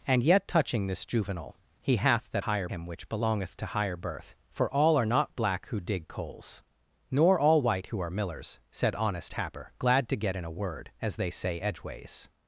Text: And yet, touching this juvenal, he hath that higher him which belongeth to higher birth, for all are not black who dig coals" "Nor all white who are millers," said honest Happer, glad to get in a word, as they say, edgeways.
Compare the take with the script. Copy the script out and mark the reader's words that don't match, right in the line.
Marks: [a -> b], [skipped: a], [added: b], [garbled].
And yet, touching this juvenal, he hath that higher him which belongeth to higher birth, for all are not black who dig coals" "Nor all white who are millers," said honest Happer, glad to get in a word, as they say, edgeways.